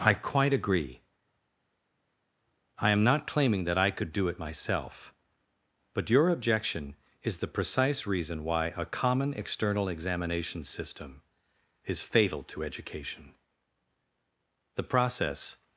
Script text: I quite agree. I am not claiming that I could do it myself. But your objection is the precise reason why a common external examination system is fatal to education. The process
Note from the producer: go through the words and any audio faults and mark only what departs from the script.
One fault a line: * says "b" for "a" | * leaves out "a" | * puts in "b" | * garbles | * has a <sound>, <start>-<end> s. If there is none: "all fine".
all fine